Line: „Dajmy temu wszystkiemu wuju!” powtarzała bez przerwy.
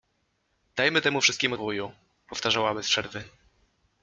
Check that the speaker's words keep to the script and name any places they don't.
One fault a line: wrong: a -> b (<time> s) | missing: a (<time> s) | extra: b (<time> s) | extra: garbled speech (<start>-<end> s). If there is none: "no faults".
no faults